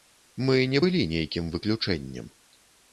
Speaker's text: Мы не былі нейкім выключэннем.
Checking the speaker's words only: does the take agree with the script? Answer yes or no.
yes